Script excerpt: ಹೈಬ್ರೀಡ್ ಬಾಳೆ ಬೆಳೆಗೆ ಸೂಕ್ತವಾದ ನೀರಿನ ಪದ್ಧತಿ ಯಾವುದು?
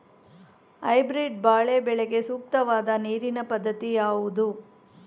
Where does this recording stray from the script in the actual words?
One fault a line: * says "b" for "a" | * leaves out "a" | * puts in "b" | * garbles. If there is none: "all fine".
all fine